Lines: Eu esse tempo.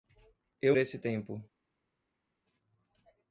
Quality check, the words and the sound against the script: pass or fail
pass